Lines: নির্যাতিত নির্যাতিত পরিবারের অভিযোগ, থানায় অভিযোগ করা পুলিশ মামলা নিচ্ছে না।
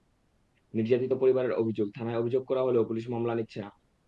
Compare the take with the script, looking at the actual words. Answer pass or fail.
fail